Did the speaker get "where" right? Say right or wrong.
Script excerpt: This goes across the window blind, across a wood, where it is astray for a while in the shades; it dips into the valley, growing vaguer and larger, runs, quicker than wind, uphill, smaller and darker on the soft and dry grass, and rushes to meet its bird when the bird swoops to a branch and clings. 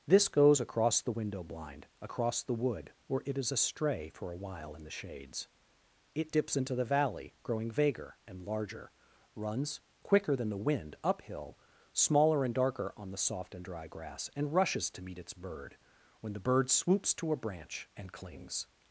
right